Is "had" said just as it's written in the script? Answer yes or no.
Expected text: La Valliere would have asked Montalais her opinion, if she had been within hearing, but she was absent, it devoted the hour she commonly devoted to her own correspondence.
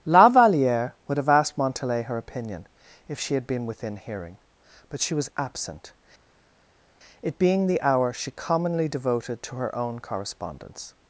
yes